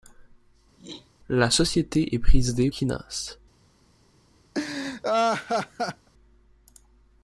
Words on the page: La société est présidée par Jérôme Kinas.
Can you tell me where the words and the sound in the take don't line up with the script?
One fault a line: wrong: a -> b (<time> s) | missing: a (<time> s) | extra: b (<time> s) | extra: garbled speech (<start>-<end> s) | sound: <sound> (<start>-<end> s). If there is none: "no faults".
sound: throat clearing (0.8-1.1 s)
missing: par Jérôme (2.7 s)
sound: laugh (4.5-6.1 s)